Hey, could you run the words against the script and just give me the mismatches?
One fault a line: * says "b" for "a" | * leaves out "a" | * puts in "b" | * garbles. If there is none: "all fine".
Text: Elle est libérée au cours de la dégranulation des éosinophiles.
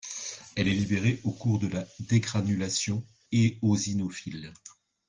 * leaves out "des"